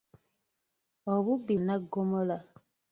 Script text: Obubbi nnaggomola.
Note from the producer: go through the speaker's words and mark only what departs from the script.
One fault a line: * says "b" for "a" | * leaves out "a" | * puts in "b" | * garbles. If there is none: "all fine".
all fine